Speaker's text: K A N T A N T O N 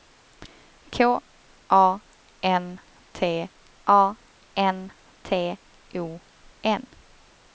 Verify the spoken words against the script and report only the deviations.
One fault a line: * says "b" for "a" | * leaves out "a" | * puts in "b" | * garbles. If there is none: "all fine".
all fine